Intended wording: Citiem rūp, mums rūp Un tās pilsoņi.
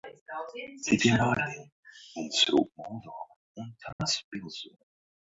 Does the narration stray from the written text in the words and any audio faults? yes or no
yes